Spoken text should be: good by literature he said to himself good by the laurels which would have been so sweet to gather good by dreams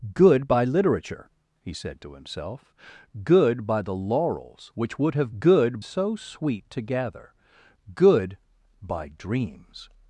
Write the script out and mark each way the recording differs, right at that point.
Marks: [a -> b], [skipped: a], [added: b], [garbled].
good by literature he said to himself good by the laurels which would have [been -> good] so sweet to gather good by dreams